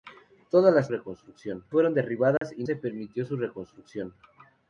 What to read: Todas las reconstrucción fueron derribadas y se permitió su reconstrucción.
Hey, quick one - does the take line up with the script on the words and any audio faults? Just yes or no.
no